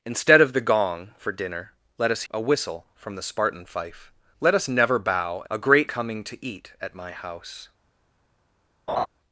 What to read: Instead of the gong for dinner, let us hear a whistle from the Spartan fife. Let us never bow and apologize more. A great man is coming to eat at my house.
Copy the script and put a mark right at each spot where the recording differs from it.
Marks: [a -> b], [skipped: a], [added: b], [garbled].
Instead of the gong for dinner, let us [skipped: hear] a whistle from the Spartan fife. Let us never bow [skipped: and apologize more.] A great [skipped: man is] coming to eat at my house.